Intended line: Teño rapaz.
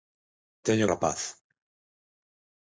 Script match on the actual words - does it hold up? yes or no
yes